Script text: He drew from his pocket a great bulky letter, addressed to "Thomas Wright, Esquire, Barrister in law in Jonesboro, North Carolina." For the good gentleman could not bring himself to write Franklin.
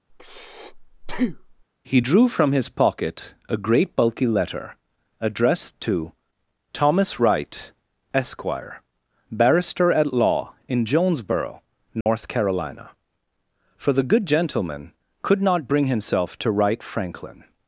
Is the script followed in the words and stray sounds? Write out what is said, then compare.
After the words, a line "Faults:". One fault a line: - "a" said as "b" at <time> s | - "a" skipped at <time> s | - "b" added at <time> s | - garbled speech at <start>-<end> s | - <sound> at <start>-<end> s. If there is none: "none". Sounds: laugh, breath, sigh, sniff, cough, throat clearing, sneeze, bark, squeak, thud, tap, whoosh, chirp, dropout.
He drew from his pocket a great bulky letter, addressed to "Thomas Wright, Esquire, Barrister at law in Jonesboro, North Carolina." For the good gentleman could not bring himself to write Franklin.
Faults:
- breath at 0.1-1.6 s
- "in" said as "at" at 9.9 s
- dropout at 12.0-12.1 s